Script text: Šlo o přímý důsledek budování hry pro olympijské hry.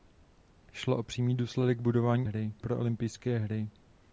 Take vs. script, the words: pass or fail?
pass